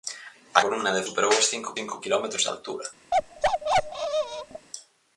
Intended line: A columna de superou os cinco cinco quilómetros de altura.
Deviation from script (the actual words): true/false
false